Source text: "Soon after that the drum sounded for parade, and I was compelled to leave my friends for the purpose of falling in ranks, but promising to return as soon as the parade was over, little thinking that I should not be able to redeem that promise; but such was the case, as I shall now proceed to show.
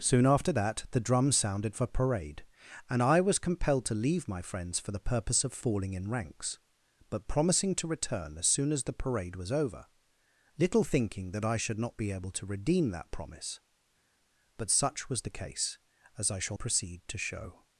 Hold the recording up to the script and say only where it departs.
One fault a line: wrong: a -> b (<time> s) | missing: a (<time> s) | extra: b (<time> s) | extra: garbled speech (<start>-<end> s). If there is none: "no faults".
missing: now (16.6 s)